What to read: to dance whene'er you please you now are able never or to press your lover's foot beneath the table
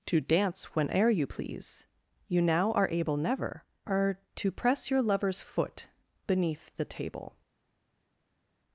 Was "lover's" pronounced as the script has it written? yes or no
yes